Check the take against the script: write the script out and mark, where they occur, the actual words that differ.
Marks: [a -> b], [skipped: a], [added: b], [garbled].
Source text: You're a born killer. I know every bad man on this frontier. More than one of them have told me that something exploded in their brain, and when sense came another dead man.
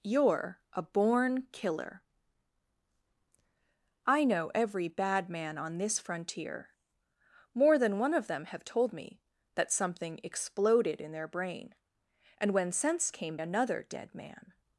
You're a born killer. I know every bad man on this frontier. More than one of them have told me that something exploded in their brain, and when sense came another dead man.